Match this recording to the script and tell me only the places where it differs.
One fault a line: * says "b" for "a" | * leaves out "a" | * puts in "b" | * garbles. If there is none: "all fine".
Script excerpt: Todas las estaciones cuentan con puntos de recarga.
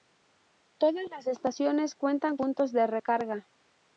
* leaves out "con"